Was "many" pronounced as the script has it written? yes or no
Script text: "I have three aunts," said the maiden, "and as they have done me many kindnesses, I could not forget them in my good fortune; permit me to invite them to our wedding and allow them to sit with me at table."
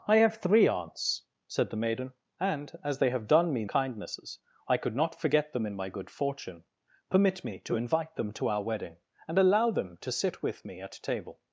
no